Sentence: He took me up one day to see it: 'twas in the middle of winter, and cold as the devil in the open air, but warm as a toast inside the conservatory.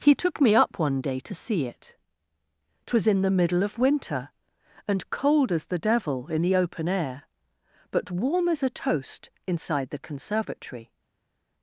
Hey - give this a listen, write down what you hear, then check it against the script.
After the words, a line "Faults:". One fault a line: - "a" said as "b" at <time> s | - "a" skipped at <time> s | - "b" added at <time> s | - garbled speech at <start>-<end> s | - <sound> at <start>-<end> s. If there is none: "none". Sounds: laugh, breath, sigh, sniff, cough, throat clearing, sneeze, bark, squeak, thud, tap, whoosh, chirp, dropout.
He took me up one day to see it: 'twas in the middle of winter, and cold as the devil in the open air, but warm as a toast inside the conservatory.
Faults:
none